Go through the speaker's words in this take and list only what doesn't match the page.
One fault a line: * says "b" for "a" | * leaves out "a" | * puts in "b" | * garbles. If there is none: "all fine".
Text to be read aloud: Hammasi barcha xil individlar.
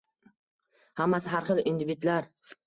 * says "har" for "barcha"